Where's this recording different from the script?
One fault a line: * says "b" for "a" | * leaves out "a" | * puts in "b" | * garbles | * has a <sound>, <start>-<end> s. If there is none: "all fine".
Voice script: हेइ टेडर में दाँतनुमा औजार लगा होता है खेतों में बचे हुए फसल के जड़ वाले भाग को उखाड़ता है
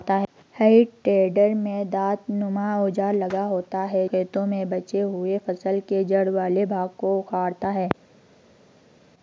all fine